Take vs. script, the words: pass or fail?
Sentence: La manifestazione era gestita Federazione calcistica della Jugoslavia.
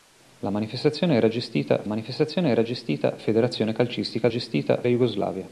fail